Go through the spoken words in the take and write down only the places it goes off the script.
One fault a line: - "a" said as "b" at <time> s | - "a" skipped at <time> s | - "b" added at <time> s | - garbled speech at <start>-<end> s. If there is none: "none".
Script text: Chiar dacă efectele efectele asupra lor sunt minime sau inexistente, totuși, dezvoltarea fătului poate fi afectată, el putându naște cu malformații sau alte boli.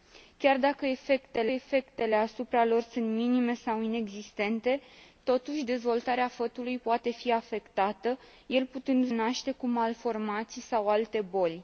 none